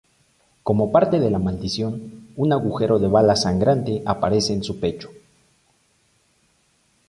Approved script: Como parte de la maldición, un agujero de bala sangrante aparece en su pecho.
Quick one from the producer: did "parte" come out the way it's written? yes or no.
yes